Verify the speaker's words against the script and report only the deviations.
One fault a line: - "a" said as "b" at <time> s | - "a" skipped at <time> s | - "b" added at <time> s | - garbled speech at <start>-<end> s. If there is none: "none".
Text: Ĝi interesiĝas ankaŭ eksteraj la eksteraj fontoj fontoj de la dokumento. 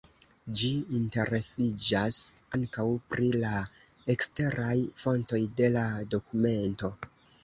- "eksteraj" said as "pri" at 3.1 s
- "fontoj" skipped at 5.4 s